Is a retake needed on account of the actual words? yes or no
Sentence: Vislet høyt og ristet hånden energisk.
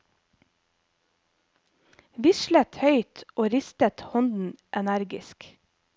no